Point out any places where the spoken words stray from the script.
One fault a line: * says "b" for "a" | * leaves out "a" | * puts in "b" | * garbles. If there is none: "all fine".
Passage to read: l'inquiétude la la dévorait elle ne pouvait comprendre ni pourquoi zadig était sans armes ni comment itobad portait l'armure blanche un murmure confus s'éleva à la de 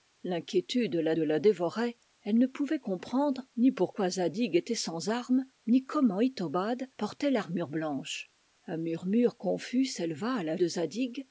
all fine